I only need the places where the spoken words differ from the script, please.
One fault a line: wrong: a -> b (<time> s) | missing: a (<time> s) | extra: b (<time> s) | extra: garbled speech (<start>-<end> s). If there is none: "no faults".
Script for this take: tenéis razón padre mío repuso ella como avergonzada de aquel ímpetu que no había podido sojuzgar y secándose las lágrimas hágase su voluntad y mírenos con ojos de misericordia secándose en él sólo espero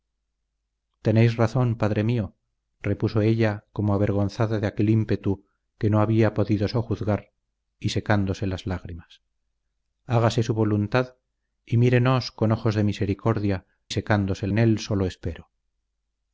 no faults